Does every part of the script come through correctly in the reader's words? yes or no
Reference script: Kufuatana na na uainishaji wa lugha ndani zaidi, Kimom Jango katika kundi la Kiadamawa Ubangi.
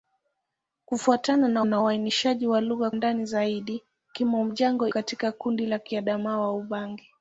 yes